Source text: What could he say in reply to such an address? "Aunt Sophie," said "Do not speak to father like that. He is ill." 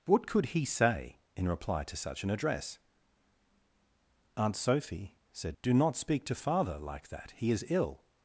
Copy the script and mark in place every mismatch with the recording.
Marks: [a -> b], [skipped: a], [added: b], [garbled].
What could he say in reply to such an address? "Aunt Sophie," said "Do not speak to father like that. He is ill."